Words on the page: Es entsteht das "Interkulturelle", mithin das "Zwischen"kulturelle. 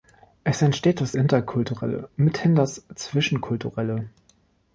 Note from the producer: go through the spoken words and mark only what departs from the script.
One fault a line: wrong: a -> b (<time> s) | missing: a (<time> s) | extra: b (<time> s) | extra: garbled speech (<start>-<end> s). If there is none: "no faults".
no faults